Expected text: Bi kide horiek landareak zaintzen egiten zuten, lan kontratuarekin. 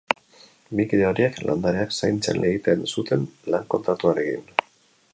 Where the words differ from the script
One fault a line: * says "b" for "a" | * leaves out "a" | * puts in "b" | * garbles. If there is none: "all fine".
all fine